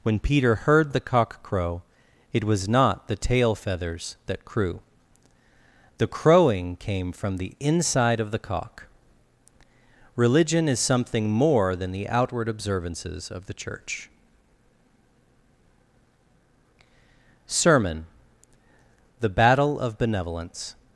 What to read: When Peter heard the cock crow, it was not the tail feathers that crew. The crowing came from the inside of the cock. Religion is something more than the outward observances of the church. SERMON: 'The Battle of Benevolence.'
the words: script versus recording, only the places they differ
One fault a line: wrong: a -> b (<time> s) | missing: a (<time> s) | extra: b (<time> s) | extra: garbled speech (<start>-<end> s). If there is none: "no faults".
no faults